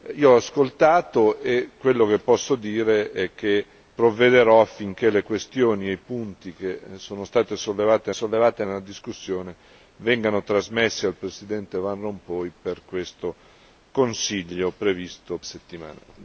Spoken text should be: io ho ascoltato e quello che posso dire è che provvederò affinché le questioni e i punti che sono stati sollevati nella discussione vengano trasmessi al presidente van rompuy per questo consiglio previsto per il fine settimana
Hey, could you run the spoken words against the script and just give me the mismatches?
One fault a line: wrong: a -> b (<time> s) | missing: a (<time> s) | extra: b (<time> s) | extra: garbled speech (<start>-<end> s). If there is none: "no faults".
extra: sollevati (8.1 s)
missing: per il fine (15.4 s)